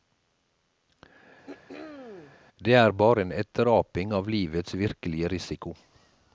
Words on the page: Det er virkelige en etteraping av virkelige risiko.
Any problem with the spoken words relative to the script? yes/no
yes